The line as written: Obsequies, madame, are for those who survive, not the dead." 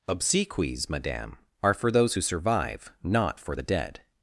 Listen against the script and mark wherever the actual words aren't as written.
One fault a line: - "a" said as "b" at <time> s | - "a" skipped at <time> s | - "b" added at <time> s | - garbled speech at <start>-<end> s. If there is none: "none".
- "for" added at 3.4 s